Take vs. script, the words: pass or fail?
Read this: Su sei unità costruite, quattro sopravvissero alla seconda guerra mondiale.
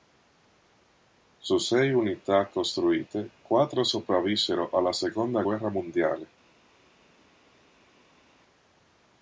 pass